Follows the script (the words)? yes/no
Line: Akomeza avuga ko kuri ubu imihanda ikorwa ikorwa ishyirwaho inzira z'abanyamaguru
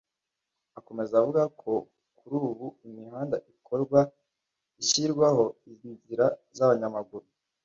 no